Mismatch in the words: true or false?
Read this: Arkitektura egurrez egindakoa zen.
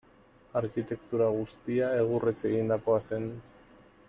true